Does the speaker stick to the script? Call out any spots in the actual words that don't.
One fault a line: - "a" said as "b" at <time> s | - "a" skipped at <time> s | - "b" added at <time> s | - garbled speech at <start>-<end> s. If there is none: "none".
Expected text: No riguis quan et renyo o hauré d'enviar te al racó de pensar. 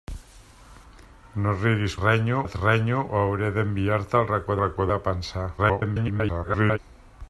- "quan" said as "renyo" at 2.0 s
- "racó" added at 4.6 s
- garbled speech at 5.6-6.8 s